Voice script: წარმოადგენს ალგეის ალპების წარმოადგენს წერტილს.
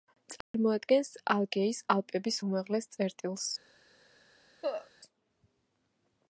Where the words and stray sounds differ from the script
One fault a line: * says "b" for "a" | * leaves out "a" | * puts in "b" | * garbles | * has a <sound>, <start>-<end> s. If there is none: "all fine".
* has a dropout, 0.4-0.5 s
* says "უმაღლეს" for "წარმოადგენს"
* has a cough, 4.6-4.9 s